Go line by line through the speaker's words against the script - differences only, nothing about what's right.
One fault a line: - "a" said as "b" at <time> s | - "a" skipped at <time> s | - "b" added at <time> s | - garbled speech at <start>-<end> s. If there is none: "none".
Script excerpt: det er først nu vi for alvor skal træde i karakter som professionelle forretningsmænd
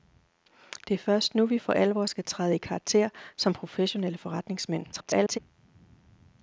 - garbled speech at 4.9-5.4 s